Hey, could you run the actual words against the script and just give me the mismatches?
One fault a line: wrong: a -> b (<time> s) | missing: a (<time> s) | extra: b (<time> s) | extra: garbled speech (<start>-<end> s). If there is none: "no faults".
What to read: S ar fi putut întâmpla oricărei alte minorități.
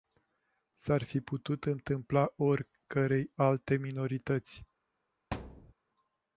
no faults